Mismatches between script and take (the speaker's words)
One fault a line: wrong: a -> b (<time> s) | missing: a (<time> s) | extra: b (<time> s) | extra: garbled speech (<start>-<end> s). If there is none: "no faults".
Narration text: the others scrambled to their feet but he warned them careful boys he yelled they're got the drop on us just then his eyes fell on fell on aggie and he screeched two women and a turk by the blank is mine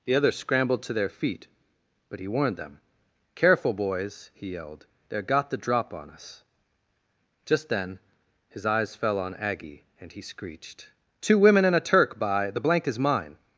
missing: fell on (9.3 s)